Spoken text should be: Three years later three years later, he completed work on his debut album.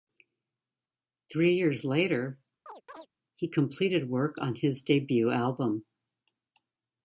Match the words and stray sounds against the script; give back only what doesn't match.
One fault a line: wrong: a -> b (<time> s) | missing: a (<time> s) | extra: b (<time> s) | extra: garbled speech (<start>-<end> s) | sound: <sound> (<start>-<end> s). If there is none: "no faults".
missing: three years later (2.4 s)
sound: chirp (2.7-3.1 s)